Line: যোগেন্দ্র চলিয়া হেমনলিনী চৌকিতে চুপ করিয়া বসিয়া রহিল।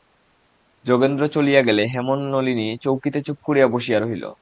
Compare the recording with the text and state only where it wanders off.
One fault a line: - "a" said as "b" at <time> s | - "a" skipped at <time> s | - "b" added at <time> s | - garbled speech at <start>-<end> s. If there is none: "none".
- "গেলে" added at 1.6 s